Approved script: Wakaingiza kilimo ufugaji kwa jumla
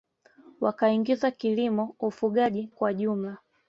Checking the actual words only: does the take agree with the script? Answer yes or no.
yes